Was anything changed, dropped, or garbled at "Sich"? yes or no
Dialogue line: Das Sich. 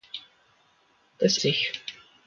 no